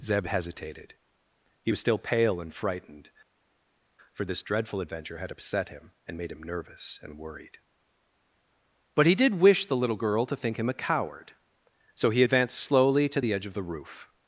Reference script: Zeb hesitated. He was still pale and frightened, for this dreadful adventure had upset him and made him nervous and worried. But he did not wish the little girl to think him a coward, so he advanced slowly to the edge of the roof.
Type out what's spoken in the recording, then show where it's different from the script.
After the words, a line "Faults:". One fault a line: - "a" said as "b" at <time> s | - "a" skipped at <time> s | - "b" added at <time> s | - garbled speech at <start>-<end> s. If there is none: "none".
Zeb hesitated. He was still pale and frightened, for this dreadful adventure had upset him and made him nervous and worried. But he did wish the little girl to think him a coward, so he advanced slowly to the edge of the roof.
Faults:
- "not" skipped at 9.4 s